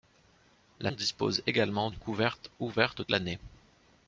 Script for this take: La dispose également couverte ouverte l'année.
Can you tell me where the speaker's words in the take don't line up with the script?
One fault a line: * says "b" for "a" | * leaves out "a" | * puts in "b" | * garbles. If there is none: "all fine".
all fine